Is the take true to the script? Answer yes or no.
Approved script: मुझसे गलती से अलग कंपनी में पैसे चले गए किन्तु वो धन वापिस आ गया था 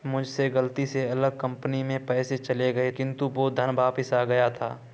yes